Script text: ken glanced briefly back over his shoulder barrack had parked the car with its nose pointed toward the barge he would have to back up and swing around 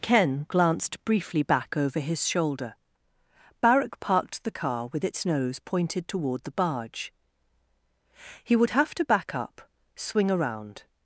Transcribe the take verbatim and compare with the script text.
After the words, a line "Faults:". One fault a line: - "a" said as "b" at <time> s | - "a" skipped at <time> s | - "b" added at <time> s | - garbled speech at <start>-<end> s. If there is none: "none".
ken glanced briefly back over his shoulder barrack parked the car with its nose pointed toward the barge he would have to back up swing around
Faults:
- "had" skipped at 4.0 s
- "and" skipped at 9.6 s